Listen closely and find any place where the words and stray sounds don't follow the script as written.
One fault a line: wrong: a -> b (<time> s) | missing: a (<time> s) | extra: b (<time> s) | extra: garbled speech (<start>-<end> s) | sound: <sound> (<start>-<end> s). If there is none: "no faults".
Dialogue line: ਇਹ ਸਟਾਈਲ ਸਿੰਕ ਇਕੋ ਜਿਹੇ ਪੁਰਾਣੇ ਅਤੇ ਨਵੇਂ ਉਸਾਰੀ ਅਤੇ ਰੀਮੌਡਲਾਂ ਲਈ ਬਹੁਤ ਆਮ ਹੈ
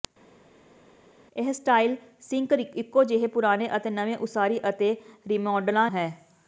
missing: ਲਈ ਬਹੁਤ ਆਮ (5.9 s)